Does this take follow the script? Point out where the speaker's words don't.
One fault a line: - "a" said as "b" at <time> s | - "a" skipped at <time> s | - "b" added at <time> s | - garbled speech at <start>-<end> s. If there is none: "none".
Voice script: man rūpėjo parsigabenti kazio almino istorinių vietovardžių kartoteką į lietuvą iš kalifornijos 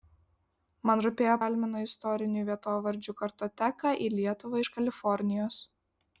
- "parsigabenti kazio" skipped at 1.3 s